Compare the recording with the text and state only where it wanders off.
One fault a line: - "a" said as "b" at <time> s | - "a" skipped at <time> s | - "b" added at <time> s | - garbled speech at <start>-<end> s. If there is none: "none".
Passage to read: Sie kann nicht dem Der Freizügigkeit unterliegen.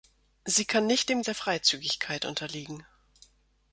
none